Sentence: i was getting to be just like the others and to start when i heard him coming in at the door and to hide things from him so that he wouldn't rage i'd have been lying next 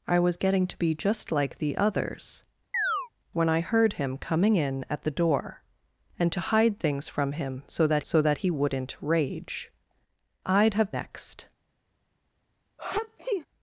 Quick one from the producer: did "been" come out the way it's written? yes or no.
no